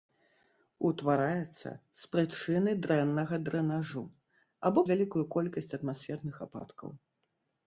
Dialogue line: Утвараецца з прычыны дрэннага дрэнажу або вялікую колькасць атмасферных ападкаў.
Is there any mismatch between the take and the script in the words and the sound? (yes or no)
no